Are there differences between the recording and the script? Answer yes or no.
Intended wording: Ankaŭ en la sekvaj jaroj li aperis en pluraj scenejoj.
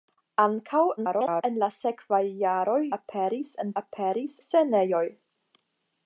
yes